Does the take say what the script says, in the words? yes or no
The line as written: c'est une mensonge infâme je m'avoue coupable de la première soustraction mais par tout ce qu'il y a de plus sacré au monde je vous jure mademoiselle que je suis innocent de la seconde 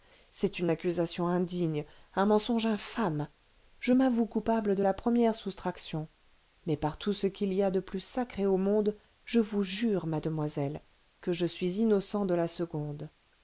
no